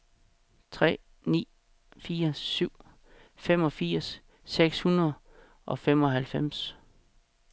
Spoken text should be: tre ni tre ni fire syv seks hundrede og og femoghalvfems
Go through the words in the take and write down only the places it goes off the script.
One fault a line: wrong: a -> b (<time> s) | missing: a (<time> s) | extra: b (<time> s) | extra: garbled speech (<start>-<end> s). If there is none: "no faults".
missing: tre ni (1.5 s)
extra: femogfirs (3.4 s)
missing: og (5.8 s)